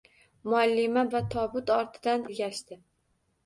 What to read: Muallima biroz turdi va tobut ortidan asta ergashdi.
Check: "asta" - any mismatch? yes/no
yes